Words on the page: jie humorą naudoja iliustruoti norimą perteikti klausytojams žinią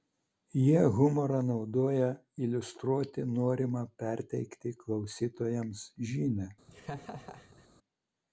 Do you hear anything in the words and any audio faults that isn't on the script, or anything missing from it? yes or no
yes